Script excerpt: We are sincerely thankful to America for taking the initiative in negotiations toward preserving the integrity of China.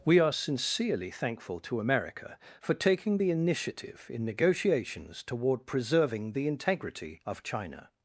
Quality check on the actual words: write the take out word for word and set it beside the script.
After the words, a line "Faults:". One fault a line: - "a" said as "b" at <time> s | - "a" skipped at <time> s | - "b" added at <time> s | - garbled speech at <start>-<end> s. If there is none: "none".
We are sincerely thankful to America for taking the initiative in negotiations toward preserving the integrity of China.
Faults:
none